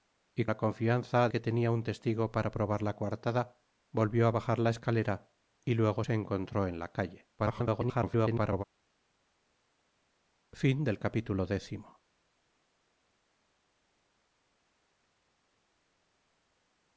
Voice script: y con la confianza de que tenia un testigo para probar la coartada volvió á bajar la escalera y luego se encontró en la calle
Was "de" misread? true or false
true